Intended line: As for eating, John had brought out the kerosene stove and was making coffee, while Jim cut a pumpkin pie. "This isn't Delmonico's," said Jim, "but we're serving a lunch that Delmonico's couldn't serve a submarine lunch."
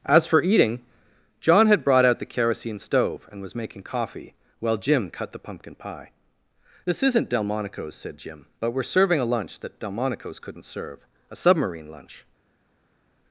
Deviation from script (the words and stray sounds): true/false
true